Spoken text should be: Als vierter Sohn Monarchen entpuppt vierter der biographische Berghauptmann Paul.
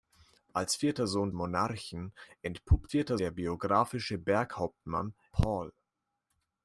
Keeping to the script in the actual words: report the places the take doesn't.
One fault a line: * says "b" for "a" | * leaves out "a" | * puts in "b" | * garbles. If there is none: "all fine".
all fine